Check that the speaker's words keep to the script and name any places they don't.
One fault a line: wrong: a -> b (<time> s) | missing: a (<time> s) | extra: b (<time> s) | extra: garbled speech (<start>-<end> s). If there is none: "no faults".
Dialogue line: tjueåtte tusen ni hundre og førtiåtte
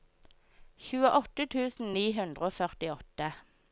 no faults